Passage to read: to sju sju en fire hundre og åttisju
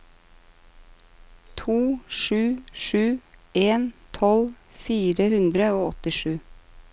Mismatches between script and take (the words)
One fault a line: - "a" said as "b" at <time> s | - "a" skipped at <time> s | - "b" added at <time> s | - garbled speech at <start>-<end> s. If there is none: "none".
- "tolv" added at 4.2 s